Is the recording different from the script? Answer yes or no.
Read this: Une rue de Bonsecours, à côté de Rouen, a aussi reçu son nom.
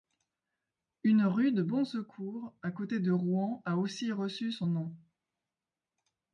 no